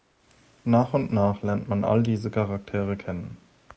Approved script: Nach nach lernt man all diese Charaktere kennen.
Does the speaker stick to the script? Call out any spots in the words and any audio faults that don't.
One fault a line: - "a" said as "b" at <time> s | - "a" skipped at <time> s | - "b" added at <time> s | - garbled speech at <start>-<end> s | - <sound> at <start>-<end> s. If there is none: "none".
- "und" added at 0.9 s